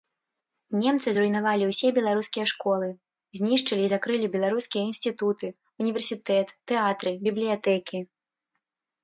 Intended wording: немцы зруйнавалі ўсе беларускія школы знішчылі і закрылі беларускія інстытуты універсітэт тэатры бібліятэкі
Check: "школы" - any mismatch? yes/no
no